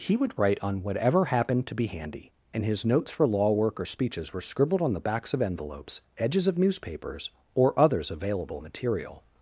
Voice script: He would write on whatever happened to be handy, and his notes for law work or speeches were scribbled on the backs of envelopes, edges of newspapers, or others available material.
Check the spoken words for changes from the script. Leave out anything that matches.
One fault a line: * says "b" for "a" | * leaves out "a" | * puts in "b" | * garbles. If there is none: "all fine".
all fine